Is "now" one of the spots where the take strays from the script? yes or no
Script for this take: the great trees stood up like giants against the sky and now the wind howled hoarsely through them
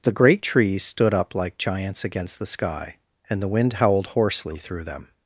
yes